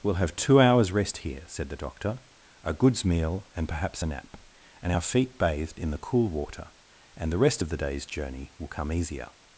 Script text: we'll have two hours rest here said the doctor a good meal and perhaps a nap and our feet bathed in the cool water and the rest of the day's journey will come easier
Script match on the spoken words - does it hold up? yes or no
no